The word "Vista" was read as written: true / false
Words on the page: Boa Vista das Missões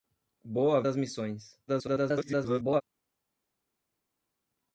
false